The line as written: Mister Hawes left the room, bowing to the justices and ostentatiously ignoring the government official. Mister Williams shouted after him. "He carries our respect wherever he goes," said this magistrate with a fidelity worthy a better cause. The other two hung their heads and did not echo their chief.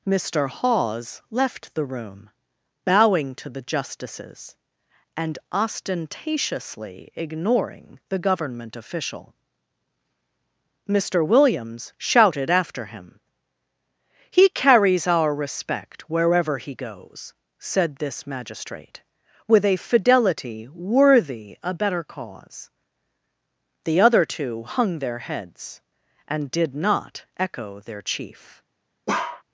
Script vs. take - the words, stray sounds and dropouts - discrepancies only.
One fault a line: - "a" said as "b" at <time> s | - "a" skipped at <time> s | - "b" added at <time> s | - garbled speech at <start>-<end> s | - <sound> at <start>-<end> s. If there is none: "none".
- bark at 29.1-29.4 s